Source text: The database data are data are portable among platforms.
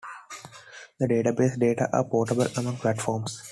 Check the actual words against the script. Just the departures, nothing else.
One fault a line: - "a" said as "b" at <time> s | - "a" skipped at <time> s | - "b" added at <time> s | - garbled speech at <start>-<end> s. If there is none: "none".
- "data are" skipped at 2.0 s